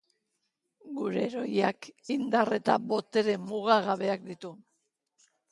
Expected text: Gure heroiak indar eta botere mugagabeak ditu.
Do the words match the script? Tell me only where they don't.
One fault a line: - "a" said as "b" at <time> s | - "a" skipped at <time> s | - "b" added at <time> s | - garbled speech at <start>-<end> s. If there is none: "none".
none